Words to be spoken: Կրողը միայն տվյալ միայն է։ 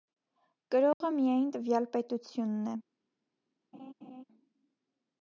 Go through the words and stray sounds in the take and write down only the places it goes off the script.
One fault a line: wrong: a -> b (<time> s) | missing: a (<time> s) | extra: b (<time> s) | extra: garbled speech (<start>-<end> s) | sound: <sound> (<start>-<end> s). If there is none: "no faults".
sound: dropout (0.9-1.0 s)
wrong: միայն -> պետությունն (2.0 s)
sound: laugh (3.7-4.2 s)